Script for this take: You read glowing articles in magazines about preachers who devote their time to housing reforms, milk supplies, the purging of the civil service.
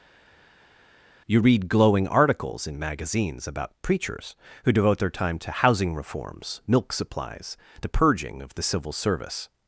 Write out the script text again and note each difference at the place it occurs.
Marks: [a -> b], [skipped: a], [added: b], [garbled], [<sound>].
You read glowing articles in magazines about preachers who devote their time to housing reforms, milk supplies, the purging of the civil service.